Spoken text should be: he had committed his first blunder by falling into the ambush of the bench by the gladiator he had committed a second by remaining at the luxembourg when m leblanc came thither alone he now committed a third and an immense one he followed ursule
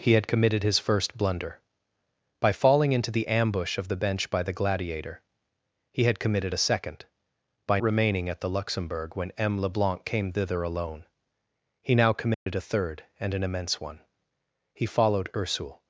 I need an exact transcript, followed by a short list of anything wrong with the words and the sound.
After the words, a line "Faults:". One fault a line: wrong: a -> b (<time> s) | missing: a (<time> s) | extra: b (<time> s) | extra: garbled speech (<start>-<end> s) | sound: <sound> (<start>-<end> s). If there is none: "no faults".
he had committed his first blunder by falling into the ambush of the bench by the gladiator he had committed a second by remaining at the luxembourg when m leblanc came thither alone he now committed a third and an immense one he followed ursule
Faults:
sound: dropout (12.3-12.5 s)